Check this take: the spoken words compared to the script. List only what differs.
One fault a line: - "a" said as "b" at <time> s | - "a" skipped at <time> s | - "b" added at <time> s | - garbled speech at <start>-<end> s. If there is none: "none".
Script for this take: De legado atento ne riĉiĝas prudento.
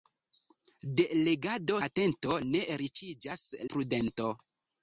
none